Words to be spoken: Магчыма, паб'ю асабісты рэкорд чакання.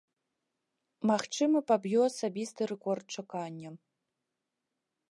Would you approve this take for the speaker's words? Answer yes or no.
yes